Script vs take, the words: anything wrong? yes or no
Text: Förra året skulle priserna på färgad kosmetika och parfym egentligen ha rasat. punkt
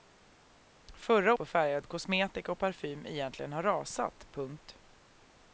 yes